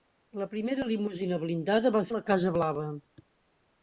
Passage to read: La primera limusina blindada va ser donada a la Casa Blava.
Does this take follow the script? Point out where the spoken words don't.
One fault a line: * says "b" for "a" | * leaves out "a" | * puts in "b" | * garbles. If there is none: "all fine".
* leaves out "ser donada"